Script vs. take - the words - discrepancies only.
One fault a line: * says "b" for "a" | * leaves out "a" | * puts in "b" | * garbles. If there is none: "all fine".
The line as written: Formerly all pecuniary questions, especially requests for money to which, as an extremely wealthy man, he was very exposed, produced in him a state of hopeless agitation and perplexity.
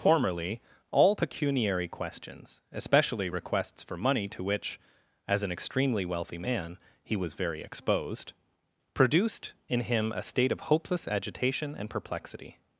all fine